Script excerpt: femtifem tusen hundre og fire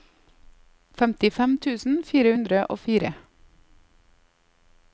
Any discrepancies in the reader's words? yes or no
yes